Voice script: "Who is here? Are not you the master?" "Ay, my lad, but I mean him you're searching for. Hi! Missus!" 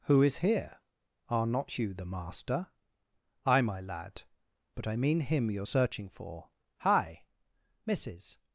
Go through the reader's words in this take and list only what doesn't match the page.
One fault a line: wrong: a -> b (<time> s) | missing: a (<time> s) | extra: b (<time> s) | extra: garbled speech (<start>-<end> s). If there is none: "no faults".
no faults